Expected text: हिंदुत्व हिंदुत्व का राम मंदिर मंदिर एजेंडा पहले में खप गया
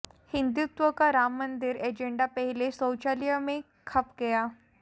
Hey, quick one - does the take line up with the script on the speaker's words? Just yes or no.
no